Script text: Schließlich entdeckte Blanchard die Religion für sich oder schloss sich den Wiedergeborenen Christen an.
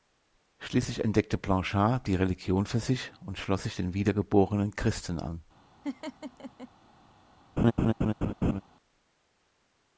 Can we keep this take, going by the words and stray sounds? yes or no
no